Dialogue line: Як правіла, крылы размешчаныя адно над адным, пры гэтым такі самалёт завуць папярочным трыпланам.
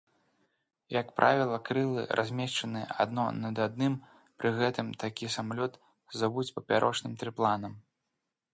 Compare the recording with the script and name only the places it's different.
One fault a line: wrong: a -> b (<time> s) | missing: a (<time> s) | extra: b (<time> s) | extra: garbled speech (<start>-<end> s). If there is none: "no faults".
no faults